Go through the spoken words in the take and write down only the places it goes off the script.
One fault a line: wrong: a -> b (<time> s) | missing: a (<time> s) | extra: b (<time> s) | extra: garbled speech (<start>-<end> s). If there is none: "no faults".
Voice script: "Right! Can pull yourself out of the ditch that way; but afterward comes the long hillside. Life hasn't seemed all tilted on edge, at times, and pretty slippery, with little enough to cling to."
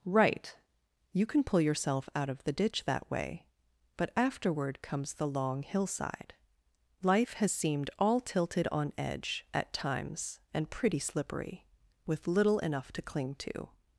extra: You (1.1 s)
wrong: hasn't -> has (7.3 s)